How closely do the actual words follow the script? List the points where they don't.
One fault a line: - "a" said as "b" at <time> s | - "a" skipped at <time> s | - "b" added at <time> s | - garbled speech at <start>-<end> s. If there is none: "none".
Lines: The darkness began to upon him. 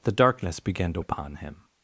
none